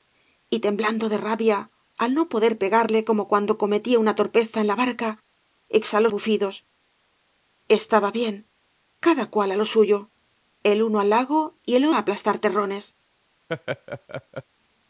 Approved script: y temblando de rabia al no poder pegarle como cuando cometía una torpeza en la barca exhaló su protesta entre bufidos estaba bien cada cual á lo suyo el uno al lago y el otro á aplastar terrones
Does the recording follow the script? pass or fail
fail